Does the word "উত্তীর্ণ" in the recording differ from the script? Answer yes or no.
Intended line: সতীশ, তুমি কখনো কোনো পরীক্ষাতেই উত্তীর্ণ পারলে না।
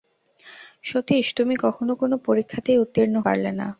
no